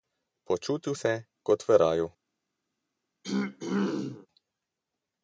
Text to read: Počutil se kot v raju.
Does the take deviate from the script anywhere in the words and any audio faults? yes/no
yes